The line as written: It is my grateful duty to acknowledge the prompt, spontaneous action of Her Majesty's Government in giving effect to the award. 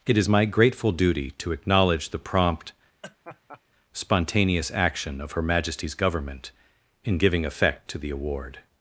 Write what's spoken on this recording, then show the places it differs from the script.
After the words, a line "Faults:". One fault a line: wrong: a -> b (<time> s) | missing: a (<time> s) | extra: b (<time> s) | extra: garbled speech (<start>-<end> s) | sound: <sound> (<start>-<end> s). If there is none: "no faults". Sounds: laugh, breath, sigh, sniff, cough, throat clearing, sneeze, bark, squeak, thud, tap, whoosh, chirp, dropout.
It is my grateful duty to acknowledge the prompt, spontaneous action of Her Majesty's Government in giving effect to the award.
Faults:
sound: laugh (3.0-3.6 s)